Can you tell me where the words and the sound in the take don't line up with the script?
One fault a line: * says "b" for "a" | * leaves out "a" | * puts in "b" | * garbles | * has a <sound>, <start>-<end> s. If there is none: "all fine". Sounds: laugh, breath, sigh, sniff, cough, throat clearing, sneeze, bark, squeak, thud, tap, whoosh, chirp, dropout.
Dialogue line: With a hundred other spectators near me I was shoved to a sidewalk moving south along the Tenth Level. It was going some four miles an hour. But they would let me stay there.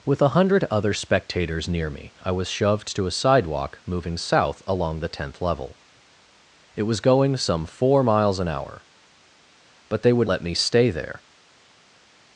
all fine